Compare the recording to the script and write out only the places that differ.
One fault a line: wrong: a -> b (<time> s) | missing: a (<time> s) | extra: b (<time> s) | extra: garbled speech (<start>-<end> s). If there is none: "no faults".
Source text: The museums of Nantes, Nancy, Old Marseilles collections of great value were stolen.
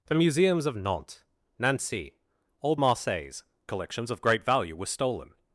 no faults